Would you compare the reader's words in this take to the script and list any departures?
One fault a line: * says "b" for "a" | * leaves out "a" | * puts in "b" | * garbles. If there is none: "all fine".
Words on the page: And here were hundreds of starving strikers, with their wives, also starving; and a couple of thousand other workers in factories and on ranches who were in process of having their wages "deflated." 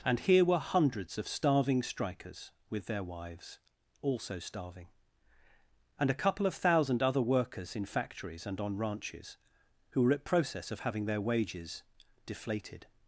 * says "at" for "in"